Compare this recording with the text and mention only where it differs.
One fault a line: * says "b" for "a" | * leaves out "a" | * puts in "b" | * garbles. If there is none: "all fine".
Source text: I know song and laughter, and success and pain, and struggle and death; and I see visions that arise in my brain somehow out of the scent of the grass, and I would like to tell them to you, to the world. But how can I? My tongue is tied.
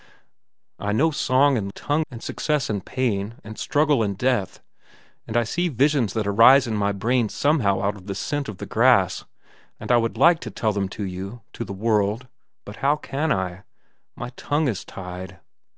* says "tongue" for "laughter"